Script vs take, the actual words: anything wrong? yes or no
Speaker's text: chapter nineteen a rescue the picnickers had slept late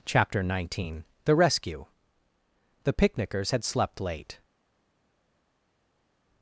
yes